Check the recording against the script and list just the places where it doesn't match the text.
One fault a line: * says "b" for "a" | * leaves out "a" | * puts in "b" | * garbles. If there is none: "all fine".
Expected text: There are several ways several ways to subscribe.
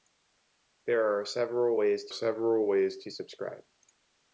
all fine